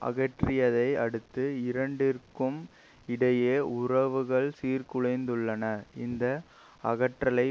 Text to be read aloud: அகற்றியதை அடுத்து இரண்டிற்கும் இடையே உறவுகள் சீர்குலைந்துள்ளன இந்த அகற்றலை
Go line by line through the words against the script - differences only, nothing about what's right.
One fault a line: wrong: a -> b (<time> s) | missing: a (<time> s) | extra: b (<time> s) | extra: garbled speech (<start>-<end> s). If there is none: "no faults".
no faults